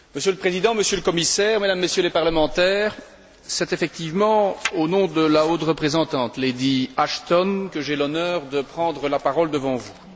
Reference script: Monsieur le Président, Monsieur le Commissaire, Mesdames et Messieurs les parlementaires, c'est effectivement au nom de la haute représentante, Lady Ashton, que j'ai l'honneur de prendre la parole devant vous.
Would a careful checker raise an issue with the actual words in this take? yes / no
no